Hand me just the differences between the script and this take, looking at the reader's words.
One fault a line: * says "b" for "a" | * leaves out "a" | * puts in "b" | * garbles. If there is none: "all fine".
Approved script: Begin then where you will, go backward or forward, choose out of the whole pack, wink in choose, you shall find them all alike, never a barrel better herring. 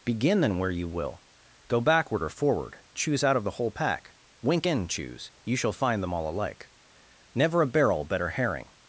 all fine